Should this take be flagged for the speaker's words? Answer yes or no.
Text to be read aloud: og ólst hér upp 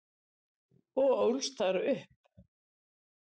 yes